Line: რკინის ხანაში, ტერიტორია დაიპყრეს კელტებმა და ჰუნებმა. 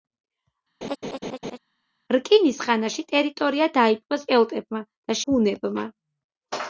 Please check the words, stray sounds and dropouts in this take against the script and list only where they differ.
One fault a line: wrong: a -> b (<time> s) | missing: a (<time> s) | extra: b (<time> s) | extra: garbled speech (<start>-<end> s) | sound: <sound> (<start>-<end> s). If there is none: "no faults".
sound: laugh (0.8-1.6 s)